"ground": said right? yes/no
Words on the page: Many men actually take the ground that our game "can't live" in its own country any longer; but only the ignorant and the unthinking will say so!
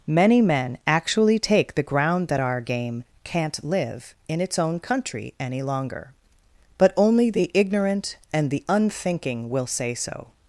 yes